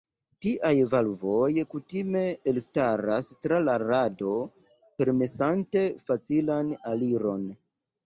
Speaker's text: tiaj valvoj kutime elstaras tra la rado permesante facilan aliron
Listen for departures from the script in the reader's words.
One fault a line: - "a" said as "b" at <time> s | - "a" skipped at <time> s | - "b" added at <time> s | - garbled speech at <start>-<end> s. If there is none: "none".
none